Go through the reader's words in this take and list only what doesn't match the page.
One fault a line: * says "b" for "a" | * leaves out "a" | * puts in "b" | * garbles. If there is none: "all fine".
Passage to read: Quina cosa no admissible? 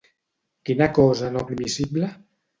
all fine